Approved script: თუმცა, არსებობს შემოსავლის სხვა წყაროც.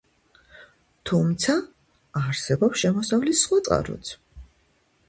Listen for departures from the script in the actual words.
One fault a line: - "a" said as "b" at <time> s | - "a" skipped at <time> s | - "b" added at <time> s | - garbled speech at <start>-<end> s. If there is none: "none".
none